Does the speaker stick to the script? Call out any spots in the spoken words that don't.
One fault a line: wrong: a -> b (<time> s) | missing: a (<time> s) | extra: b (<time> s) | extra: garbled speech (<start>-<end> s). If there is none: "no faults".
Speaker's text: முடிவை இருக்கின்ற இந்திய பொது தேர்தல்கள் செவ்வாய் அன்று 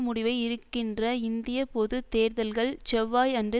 no faults